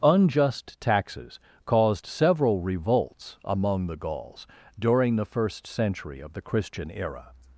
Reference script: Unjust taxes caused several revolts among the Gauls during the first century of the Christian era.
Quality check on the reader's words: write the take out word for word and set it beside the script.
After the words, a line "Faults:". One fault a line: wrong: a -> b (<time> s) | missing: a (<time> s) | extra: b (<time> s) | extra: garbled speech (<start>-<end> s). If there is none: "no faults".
Unjust taxes caused several revolts among the Gauls during the first century of the Christian era.
Faults:
no faults